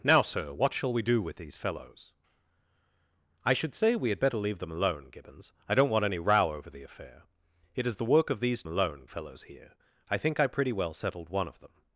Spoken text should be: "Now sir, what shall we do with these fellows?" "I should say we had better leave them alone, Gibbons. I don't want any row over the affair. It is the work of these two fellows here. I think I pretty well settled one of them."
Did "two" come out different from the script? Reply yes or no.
yes